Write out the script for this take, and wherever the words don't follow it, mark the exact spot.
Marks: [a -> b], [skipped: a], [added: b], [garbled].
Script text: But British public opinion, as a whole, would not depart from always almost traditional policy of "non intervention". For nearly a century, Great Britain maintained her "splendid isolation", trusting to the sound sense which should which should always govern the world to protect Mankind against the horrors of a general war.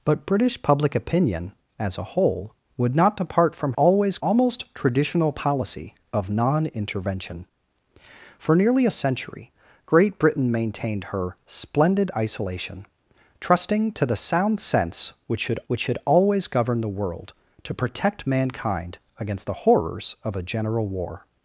But British public opinion, as a whole, would not depart from always almost traditional policy of "non intervention". For nearly a century, Great Britain maintained her "splendid isolation", trusting to the sound sense which should which should always govern the world to protect Mankind against the horrors of a general war.